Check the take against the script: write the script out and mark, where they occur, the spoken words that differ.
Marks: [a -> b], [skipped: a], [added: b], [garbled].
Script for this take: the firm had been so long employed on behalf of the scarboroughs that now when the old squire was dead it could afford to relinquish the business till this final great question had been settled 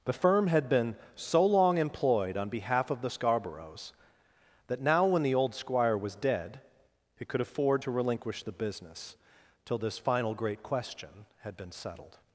the firm had been so long employed on behalf of the scarboroughs that now when the old squire was dead it could afford to relinquish the business till this final great question had been settled